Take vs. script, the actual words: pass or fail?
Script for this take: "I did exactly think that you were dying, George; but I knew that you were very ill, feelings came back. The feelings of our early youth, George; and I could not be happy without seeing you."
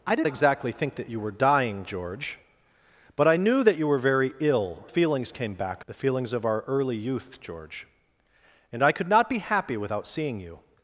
pass